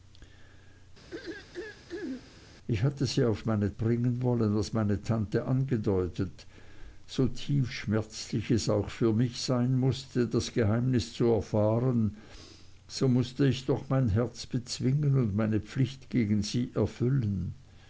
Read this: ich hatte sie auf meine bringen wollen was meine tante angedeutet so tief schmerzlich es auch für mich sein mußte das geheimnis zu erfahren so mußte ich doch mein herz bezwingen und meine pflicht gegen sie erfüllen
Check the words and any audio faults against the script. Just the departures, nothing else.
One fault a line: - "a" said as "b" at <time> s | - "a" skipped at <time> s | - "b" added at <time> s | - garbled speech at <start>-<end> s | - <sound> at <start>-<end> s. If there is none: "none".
- throat clearing at 1.1-2.4 s